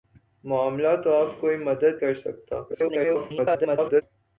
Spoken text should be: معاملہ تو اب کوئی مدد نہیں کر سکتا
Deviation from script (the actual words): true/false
true